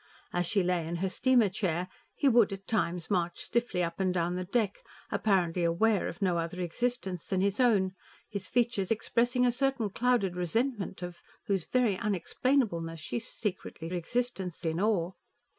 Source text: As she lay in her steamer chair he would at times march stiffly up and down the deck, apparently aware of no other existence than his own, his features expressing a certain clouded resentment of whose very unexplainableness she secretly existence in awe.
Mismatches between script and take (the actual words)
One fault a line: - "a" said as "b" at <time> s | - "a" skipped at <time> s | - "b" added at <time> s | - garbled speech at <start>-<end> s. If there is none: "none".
none